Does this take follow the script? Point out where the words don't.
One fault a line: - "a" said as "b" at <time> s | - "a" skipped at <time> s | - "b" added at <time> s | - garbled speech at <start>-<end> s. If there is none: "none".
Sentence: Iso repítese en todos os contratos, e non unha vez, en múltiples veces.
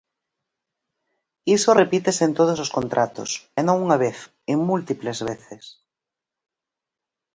none